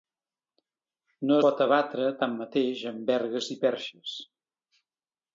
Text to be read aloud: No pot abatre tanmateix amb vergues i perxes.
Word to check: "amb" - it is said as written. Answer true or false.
true